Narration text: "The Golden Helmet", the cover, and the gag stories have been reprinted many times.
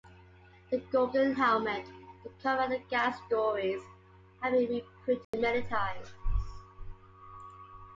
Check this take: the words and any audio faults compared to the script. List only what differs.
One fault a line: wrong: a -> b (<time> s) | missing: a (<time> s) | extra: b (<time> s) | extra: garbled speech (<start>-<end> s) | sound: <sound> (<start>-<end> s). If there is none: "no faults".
sound: dropout (5.2-5.3 s)